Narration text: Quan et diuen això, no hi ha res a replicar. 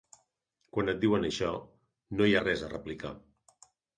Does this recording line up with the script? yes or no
yes